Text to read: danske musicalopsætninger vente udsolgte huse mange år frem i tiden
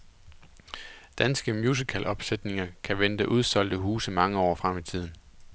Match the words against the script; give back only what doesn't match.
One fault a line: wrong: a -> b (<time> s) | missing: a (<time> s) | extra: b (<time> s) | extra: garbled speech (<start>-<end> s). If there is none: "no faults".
extra: kan (2.8 s)